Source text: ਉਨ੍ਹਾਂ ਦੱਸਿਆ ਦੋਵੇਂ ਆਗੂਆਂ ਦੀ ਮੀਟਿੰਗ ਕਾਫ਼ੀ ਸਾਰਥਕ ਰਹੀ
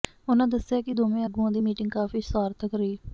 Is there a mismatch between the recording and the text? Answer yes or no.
yes